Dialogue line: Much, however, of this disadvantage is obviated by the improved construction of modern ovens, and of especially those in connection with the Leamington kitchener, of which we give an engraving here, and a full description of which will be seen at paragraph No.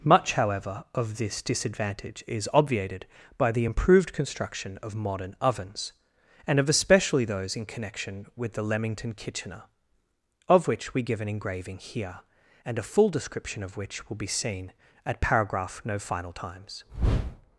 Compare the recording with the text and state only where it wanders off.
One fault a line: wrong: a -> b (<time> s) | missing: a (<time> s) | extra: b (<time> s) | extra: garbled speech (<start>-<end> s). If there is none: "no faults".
extra: final times (16.0 s)